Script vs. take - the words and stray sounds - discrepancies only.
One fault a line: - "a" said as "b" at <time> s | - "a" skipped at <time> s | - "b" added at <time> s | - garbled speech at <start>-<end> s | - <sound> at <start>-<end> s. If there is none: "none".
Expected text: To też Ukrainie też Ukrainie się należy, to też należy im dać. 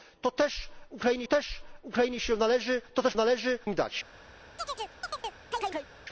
- chirp at 4.6-5.9 s